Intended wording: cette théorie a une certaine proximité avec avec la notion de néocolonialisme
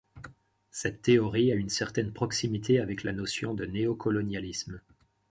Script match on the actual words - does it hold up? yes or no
no